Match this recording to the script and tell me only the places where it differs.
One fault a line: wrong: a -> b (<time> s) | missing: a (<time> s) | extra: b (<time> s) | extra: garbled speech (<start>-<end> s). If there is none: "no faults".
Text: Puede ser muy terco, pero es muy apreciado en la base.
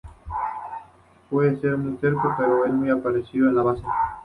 no faults